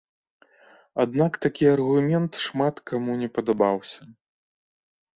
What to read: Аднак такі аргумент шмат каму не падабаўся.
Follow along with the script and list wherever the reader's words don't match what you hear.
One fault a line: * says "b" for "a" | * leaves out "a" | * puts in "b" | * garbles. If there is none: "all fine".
all fine